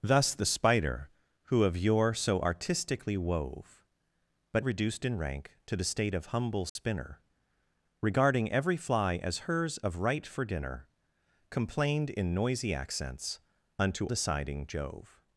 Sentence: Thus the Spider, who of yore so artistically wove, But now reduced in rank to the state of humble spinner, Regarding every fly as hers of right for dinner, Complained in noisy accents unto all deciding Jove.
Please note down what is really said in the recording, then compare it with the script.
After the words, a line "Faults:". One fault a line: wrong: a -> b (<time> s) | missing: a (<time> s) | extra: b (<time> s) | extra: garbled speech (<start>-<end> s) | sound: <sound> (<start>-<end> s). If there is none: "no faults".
Thus the Spider, who of yore so artistically wove, But reduced in rank to the state of humble spinner, Regarding every fly as hers of right for dinner, Complained in noisy accents unto deciding Jove.
Faults:
missing: now (4.7 s)
sound: dropout (6.7-6.8 s)
missing: all (14.1 s)